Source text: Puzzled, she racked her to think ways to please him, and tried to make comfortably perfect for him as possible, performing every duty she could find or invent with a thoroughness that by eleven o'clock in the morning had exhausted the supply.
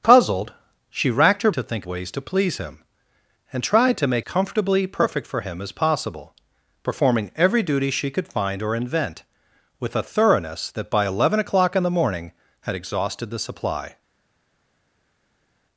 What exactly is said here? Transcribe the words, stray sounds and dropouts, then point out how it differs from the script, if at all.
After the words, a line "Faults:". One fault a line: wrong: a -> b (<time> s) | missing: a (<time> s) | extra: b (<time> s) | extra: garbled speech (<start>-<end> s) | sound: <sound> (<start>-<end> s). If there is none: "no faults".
Puzzled, she racked her to think ways to please him, and tried to make comfortably perfect for him as possible, performing every duty she could find or invent with a thoroughness that by eleven o'clock in the morning had exhausted the supply.
Faults:
no faults